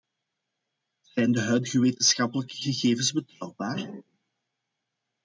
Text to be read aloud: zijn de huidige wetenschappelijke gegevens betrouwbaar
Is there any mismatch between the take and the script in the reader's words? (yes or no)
no